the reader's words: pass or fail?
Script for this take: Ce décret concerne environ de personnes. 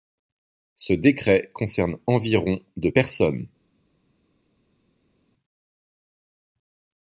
pass